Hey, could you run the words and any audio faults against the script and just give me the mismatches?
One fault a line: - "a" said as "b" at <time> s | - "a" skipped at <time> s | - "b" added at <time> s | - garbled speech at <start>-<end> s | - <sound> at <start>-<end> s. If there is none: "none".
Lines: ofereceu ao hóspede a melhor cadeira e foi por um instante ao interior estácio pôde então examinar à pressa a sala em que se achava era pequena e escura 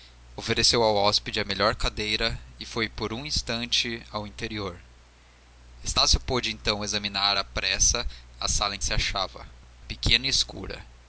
- "que" skipped at 8.8 s
- "era" skipped at 9.5 s